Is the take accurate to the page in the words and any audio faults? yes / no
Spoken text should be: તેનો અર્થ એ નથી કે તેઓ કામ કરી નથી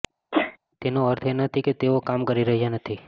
no